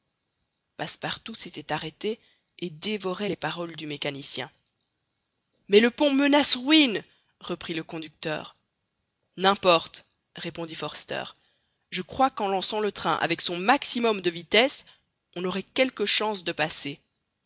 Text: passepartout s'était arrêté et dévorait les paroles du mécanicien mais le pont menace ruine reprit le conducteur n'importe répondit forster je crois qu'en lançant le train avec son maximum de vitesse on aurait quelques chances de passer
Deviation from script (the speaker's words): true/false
false